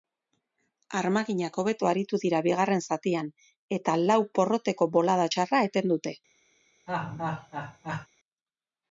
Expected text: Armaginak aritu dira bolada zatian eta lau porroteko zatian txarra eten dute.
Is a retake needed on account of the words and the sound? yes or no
yes